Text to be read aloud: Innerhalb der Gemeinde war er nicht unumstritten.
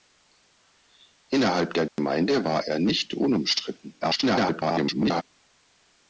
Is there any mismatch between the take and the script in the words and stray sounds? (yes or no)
yes